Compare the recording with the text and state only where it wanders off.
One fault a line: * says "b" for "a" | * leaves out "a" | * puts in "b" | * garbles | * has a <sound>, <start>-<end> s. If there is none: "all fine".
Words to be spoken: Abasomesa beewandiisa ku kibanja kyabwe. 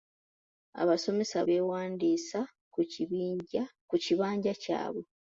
all fine